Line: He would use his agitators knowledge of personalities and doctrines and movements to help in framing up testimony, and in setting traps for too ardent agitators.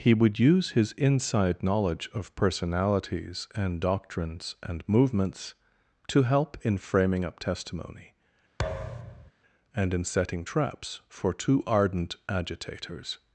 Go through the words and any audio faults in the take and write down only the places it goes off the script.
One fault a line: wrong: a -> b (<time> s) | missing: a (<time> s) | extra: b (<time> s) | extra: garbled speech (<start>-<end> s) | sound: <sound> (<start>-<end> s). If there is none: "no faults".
wrong: agitators -> inside (0.9 s)
sound: thud (8.6-9.3 s)